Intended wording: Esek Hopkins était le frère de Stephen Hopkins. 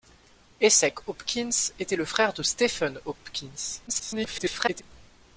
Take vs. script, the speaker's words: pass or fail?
fail